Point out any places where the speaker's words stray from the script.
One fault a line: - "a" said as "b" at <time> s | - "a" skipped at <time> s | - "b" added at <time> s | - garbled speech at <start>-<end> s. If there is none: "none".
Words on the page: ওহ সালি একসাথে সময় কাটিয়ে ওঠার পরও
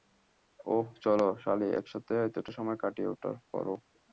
- "চলো" added at 1.0 s
- "এতটা" added at 2.3 s